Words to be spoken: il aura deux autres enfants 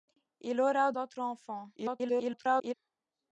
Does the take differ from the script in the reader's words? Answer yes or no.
yes